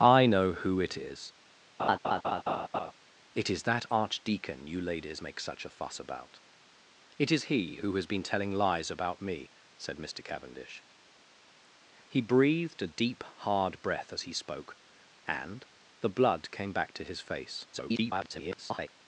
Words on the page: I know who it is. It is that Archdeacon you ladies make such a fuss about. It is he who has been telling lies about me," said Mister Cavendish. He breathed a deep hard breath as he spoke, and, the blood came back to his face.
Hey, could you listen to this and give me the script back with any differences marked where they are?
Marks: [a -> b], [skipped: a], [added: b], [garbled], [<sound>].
I know who it is. [laugh] It is that Archdeacon you ladies make such a fuss about. It is he who has been telling lies about me," said Mister Cavendish. He breathed a deep hard breath as he spoke, and, the blood came back to his face. [garbled]